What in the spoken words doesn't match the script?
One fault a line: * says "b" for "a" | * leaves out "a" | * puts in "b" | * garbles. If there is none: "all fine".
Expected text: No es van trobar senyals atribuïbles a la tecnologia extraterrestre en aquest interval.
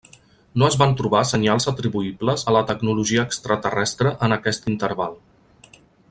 all fine